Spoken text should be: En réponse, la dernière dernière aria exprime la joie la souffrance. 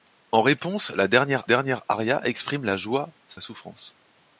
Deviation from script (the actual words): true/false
false